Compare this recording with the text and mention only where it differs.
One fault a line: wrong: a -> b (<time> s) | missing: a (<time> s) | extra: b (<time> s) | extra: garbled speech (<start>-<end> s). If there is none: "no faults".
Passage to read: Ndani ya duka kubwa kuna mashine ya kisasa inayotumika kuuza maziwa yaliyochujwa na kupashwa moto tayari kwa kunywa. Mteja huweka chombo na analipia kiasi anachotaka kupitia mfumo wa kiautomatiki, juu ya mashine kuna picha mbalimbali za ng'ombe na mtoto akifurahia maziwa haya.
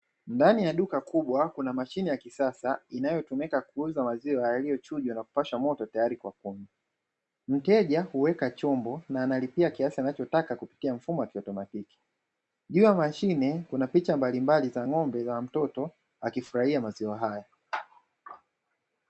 no faults